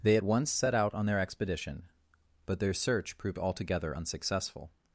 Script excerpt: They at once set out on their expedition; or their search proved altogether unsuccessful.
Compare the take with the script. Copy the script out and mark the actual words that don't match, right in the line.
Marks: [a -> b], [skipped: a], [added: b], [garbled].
They at once set out on their expedition; [or -> but] their search proved altogether unsuccessful.